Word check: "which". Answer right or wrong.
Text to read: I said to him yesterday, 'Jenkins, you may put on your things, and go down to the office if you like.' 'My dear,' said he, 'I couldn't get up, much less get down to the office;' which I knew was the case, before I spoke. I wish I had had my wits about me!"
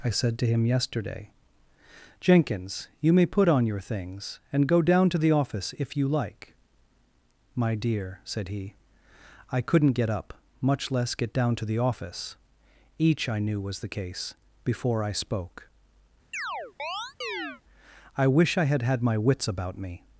wrong